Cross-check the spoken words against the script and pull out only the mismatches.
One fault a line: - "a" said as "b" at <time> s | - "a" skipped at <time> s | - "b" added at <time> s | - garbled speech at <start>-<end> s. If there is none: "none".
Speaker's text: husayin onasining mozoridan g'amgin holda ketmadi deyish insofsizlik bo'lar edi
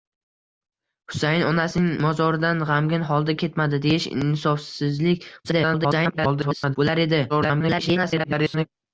- garbled speech at 5.4-6.8 s
- garbled speech at 7.3-8.7 s